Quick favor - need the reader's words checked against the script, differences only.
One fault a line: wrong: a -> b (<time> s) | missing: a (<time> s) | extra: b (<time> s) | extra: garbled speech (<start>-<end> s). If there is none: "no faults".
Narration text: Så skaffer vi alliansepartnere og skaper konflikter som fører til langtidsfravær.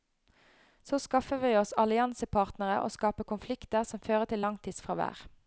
extra: oss (1.6 s)